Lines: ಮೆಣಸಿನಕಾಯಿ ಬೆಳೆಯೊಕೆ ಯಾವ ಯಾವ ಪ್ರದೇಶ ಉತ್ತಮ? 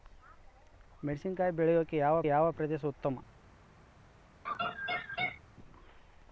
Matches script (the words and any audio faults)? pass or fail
fail